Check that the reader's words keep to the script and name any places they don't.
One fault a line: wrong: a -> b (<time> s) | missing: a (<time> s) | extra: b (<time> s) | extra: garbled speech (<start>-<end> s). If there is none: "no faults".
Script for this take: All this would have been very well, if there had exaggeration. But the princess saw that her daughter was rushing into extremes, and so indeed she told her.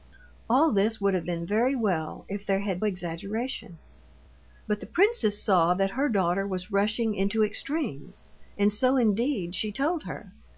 no faults